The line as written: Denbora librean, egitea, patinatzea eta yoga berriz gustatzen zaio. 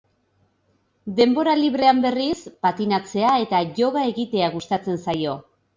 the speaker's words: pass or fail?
fail